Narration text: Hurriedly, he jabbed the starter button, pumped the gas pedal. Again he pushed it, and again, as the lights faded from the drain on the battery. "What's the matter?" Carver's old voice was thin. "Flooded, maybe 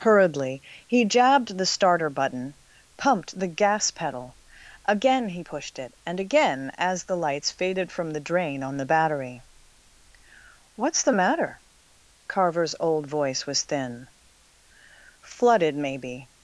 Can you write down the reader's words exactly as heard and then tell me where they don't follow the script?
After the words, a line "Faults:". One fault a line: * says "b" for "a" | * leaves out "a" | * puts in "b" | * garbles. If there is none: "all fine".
Hurriedly, he jabbed the starter button, pumped the gas pedal. Again he pushed it, and again, as the lights faded from the drain on the battery. "What's the matter?" Carver's old voice was thin. "Flooded, maybe
Faults:
all fine